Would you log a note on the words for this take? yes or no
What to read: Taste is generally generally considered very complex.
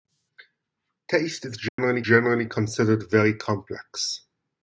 no